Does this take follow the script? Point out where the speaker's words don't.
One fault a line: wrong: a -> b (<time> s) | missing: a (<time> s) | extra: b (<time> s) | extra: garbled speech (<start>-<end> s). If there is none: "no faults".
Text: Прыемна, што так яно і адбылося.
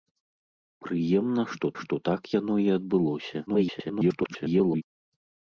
extra: што (1.8 s)
extra: garbled speech (3.5-4.8 s)